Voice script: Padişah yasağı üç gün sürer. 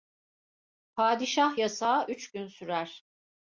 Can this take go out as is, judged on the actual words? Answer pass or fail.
pass